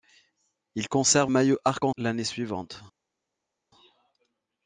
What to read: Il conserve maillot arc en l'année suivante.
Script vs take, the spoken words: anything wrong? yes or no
no